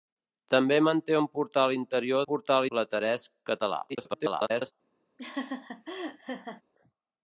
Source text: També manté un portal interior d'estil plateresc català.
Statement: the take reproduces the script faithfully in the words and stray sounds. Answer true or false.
false